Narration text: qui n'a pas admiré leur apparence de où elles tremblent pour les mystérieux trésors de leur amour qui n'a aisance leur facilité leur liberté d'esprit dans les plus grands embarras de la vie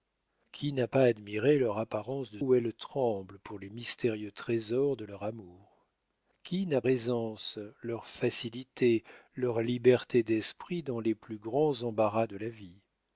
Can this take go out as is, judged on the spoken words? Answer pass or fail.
pass